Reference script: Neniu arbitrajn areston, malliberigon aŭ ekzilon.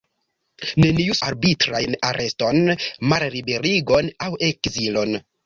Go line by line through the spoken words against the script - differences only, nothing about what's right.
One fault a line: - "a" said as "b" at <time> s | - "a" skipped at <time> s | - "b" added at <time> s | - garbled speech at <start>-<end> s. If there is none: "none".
none